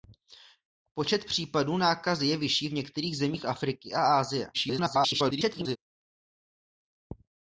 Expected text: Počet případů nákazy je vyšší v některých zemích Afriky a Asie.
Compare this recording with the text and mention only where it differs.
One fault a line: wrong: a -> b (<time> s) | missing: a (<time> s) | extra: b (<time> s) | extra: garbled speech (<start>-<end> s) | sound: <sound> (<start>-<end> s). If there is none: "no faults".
extra: garbled speech (4.5-5.8 s)